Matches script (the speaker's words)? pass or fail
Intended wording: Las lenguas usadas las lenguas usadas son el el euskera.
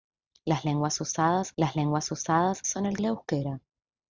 pass